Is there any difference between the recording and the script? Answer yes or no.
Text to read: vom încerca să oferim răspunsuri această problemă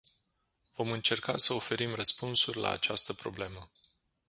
yes